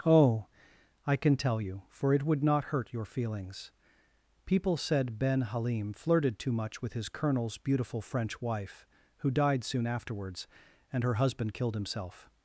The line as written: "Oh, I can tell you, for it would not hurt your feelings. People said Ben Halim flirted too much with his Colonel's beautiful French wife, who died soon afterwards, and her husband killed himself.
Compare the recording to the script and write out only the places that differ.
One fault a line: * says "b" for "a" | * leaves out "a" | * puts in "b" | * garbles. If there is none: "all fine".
all fine